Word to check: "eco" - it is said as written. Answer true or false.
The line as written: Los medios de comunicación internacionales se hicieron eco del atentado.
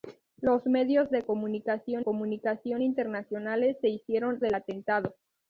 false